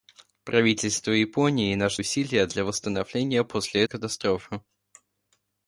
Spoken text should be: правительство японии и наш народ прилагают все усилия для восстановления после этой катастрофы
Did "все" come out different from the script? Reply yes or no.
yes